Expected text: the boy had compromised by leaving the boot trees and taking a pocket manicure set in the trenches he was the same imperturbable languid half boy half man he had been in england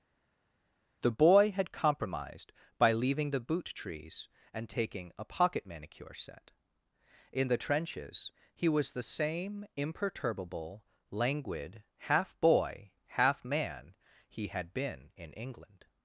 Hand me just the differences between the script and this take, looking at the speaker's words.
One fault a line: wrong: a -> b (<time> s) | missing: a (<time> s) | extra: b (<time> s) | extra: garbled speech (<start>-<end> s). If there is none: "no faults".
no faults